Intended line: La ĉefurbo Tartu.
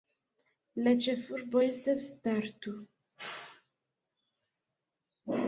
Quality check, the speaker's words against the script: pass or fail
fail